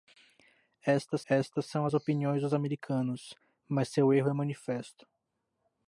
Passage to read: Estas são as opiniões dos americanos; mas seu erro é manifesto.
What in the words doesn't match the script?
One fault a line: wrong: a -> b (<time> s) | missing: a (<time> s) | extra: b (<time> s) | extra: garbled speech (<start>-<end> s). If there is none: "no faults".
extra: estas (1.3 s)